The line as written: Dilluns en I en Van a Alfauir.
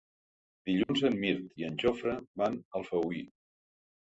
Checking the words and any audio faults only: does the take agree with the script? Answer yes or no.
no